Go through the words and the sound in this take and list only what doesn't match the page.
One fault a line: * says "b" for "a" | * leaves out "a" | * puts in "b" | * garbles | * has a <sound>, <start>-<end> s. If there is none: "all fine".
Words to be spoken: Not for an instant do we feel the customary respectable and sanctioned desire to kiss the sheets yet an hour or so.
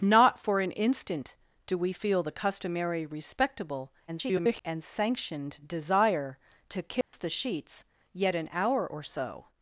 * garbles
* has a dropout, 7.0-7.1 s